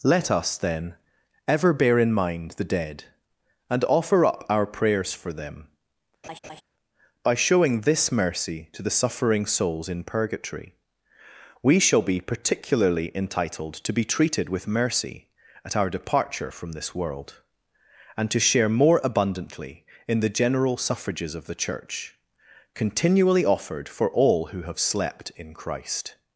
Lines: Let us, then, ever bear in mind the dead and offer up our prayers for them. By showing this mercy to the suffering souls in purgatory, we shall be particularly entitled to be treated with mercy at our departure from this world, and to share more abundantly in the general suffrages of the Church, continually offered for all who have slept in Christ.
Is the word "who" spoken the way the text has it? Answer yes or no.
yes